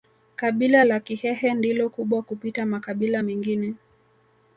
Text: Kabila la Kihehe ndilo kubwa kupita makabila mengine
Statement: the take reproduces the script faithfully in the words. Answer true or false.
true